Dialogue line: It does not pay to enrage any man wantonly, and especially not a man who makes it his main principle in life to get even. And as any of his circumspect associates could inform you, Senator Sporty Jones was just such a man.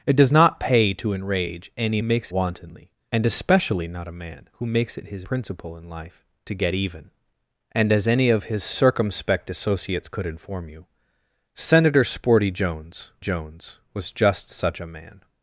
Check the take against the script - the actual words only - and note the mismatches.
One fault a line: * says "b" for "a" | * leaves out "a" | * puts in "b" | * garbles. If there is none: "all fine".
* says "makes" for "man"
* leaves out "main"
* puts in "Jones"